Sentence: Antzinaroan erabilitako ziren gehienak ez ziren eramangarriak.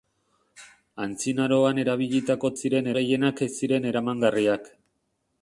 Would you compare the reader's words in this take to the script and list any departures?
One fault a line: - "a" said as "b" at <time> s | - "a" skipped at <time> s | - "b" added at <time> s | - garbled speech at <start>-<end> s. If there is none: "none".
none